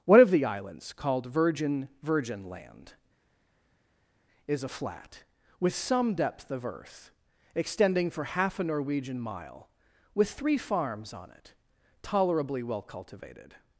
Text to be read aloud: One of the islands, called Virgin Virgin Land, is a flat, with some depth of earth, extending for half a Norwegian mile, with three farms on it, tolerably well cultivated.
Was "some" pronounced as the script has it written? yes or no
yes